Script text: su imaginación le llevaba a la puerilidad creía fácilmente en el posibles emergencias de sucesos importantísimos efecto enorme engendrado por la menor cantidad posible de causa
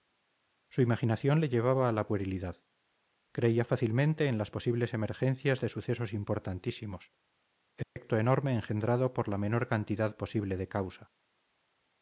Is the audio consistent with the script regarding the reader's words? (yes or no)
no